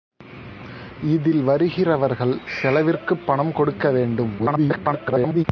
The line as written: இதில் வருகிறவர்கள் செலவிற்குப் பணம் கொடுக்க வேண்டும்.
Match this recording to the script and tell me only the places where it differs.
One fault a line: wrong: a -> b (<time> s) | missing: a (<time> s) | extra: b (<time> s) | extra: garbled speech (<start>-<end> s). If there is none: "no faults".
extra: garbled speech (4.4-5.4 s)